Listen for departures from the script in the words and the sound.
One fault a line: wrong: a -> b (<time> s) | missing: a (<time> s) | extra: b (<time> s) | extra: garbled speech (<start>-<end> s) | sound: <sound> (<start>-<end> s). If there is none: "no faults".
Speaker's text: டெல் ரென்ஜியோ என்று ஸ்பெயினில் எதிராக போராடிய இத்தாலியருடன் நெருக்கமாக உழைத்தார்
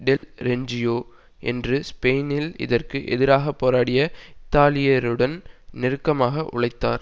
sound: dropout (0.2-0.2 s)
extra: இதற்கு (2.6 s)